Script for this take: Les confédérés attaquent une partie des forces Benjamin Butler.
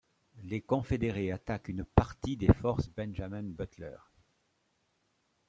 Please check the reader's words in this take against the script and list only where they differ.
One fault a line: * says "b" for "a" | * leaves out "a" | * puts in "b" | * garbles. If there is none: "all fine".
all fine